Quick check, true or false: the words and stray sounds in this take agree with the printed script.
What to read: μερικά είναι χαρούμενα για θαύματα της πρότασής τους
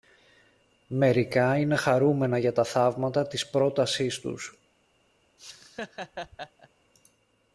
false